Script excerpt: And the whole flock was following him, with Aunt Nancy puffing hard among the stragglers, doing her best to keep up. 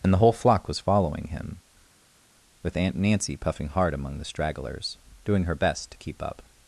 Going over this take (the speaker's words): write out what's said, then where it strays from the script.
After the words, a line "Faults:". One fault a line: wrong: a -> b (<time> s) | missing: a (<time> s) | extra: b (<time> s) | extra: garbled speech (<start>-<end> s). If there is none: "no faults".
And the whole flock was following him, with Aunt Nancy puffing hard among the stragglers, doing her best to keep up.
Faults:
no faults